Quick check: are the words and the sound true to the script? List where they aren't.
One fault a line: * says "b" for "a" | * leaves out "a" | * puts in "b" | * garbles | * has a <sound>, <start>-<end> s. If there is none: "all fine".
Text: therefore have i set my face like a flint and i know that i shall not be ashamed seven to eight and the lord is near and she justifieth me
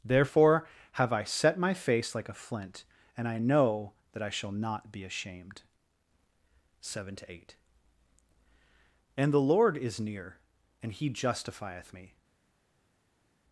* says "he" for "she"